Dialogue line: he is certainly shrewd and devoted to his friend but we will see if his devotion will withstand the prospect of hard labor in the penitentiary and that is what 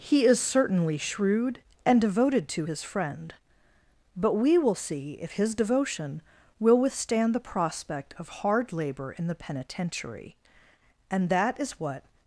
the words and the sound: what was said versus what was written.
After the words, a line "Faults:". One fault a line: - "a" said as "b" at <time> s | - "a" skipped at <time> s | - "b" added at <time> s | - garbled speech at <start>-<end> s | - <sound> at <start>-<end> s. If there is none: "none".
he is certainly shrewd and devoted to his friend but we will see if his devotion will withstand the prospect of hard labor in the penitentiary and that is what
Faults:
none